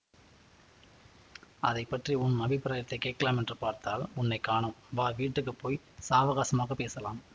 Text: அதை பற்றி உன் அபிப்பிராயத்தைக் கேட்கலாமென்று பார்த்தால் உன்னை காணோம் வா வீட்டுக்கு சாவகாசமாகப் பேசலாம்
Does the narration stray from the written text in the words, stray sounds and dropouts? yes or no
yes